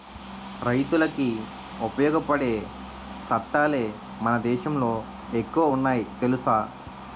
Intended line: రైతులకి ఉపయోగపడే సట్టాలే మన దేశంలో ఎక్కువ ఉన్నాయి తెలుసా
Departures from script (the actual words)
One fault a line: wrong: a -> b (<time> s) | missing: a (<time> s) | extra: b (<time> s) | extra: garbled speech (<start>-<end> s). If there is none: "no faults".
no faults